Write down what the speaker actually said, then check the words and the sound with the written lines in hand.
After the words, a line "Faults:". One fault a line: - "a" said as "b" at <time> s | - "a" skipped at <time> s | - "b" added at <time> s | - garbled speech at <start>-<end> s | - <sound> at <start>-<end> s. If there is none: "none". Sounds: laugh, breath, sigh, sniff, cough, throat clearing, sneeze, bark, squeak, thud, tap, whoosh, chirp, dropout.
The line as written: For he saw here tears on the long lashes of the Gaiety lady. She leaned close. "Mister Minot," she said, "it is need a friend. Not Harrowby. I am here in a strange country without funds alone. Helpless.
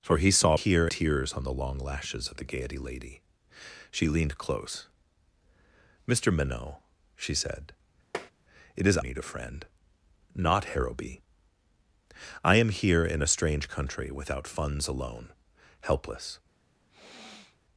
For he saw here tears on the long lashes of the Gaiety lady. She leaned close. "Mister Minot," she said, "it is need a friend. Not Harrowby. I am here in a strange country without funds alone. Helpless.
Faults:
- tap at 8.1-8.3 s
- sniff at 16.9-17.6 s